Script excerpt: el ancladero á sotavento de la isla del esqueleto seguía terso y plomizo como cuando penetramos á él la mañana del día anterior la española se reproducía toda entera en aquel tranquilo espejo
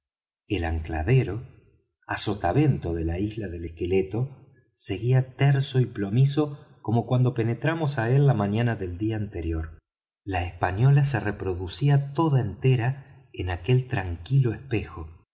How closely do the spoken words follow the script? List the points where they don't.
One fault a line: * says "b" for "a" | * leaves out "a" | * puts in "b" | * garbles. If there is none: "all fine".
all fine